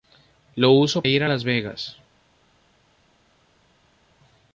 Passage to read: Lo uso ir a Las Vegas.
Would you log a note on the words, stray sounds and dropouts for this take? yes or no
no